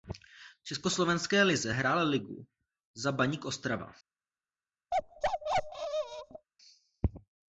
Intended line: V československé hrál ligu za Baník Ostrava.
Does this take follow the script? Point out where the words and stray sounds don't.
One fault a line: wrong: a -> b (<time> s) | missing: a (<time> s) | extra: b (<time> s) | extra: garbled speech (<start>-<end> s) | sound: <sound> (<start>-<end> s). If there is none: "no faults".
extra: lize (1.4 s)
sound: bark (4.9-6.5 s)